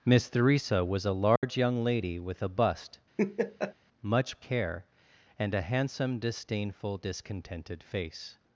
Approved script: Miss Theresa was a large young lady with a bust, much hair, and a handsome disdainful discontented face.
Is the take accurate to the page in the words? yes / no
yes